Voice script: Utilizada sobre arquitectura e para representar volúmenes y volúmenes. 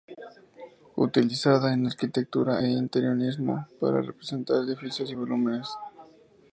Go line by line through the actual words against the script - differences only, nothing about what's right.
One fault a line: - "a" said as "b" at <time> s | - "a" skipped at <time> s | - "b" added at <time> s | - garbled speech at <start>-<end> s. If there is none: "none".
- "sobre" said as "en" at 1.7 s
- "interiorismo" added at 2.7 s
- "volúmenes" said as "edificios" at 4.6 s